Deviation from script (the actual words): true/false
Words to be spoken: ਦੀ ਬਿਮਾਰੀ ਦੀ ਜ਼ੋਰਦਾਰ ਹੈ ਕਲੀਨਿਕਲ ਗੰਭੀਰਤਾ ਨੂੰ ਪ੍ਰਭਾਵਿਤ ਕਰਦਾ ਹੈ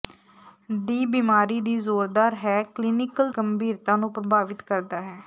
false